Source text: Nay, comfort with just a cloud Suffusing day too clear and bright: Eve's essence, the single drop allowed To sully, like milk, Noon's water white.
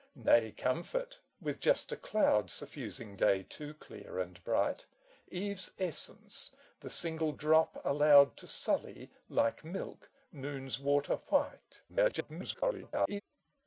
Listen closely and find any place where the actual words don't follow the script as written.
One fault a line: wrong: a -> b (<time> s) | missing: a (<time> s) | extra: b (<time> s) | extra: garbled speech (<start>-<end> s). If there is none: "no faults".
extra: garbled speech (11.9-13.2 s)